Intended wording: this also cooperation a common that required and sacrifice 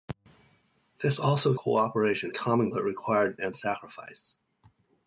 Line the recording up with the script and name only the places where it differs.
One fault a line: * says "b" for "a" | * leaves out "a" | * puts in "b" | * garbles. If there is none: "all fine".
all fine